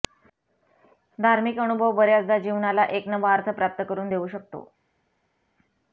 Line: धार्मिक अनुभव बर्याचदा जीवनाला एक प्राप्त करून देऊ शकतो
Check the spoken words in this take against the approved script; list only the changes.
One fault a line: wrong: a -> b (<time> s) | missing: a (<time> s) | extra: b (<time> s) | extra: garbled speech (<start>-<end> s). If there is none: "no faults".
extra: नवा अर्थ (3.1 s)